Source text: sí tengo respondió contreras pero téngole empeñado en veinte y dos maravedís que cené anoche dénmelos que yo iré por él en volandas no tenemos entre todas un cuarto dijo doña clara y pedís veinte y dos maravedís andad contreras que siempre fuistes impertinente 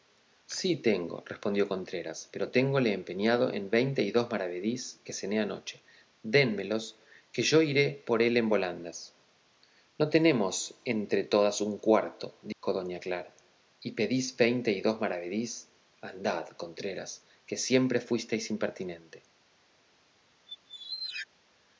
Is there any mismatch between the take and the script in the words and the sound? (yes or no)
yes